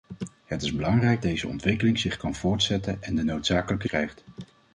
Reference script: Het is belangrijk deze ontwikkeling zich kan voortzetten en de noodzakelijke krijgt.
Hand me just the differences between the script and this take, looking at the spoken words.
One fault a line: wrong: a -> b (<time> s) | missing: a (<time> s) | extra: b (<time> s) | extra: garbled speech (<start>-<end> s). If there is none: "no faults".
no faults